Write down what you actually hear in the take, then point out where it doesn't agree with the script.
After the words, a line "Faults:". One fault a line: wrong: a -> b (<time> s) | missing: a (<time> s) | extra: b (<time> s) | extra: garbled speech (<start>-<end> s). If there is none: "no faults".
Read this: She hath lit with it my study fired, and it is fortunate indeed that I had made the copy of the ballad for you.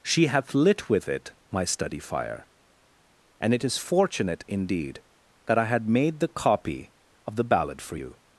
She hath lit with it my study fire, and it is fortunate indeed that I had made the copy of the ballad for you.
Faults:
wrong: fired -> fire (2.0 s)